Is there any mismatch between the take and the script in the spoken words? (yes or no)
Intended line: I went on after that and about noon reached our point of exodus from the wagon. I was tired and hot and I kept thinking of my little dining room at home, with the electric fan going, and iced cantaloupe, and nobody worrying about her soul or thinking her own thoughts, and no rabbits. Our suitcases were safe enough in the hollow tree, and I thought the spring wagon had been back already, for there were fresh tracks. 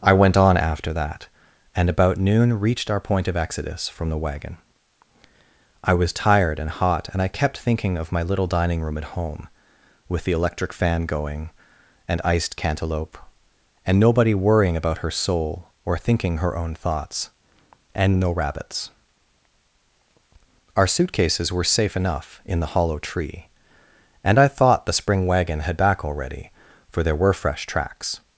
yes